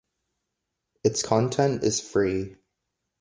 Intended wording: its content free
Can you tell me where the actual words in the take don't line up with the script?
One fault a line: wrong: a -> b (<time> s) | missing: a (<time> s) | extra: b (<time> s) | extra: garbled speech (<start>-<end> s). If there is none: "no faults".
extra: is (1.8 s)